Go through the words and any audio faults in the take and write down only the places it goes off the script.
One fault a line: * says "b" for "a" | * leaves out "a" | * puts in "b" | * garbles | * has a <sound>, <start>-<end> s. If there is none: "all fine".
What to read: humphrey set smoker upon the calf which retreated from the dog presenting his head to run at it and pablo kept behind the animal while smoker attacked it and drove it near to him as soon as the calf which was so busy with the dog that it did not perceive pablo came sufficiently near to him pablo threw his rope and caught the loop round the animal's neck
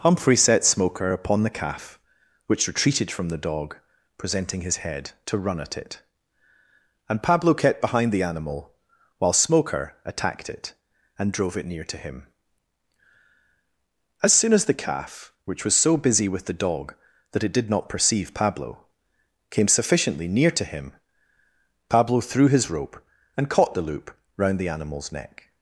all fine